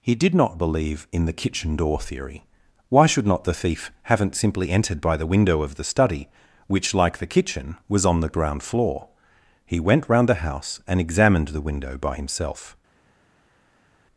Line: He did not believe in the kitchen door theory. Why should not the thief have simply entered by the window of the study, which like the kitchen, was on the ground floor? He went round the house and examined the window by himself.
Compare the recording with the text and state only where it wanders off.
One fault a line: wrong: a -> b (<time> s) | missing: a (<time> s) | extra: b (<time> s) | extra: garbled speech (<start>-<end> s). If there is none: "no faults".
wrong: have -> haven't (4.0 s)